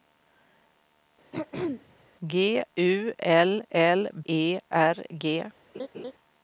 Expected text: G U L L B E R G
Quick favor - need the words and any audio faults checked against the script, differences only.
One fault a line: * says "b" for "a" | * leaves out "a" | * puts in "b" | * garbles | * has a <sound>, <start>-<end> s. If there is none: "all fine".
* has a throat clearing, 1.3-2.1 s
* leaves out "B"
* has a laugh, 5.7-6.1 s